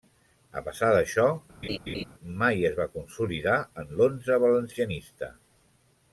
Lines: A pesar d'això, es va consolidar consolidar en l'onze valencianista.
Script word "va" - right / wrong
right